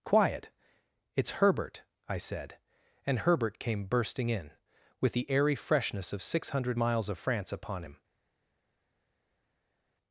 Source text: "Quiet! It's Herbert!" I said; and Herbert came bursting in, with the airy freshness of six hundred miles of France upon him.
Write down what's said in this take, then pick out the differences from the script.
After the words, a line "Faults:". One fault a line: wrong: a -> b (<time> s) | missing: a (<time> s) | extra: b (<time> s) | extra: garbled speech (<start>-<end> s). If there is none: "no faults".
"Quiet! It's Herbert!" I said; and Herbert came bursting in, with the airy freshness of six hundred miles of France upon him.
Faults:
no faults